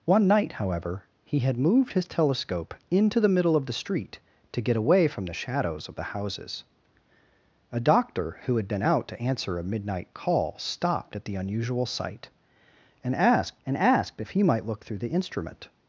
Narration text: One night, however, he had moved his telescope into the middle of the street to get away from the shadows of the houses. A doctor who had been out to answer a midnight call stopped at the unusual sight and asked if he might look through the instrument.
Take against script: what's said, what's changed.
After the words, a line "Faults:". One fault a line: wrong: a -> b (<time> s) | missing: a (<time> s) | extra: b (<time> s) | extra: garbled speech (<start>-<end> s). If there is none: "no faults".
One night, however, he had moved his telescope into the middle of the street to get away from the shadows of the houses. A doctor who had been out to answer a midnight call stopped at the unusual sight and asked and asked if he might look through the instrument.
Faults:
extra: and asked (13.7 s)